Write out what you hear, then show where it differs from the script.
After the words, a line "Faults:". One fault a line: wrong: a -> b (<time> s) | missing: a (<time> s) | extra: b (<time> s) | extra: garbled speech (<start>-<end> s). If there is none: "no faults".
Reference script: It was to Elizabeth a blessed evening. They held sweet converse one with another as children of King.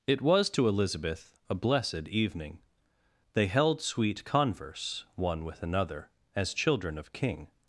It was to Elizabeth a blessed evening. They held sweet converse one with another as children of King.
Faults:
no faults